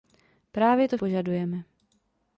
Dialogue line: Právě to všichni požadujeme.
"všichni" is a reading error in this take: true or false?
true